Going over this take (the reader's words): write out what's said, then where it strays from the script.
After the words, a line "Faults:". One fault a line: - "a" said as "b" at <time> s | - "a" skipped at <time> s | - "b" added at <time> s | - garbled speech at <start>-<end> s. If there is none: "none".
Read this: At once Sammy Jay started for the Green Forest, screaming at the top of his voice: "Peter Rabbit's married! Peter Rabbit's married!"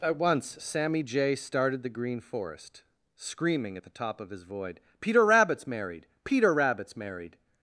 At once Sammy Jay started the Green Forest, screaming at the top of his void: "Peter Rabbit's married! Peter Rabbit's married!"
Faults:
- "for" skipped at 1.8 s
- "voice" said as "void" at 4.4 s